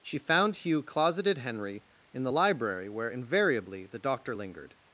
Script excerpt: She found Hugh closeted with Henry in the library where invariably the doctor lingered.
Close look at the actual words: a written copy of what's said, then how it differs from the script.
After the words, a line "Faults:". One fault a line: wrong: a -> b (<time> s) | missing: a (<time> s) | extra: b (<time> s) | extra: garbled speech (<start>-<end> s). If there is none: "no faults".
She found Hugh closeted Henry in the library where invariably the doctor lingered.
Faults:
missing: with (1.4 s)